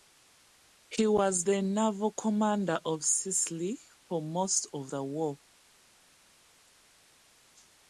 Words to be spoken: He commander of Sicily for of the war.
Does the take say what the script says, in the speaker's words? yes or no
no